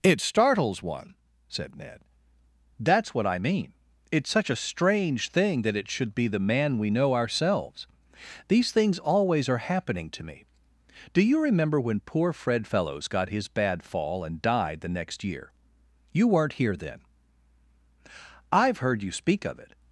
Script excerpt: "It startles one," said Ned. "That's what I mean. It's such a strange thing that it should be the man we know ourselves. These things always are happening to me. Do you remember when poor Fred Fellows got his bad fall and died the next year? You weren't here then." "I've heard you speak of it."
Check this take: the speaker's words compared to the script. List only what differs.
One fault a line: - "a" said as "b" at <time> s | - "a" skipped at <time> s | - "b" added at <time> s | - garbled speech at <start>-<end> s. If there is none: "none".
none